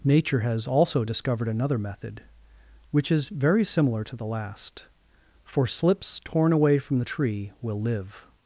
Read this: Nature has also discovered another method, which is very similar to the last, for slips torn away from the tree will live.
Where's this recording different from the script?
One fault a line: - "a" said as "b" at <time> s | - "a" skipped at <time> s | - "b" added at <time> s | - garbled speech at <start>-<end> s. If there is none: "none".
none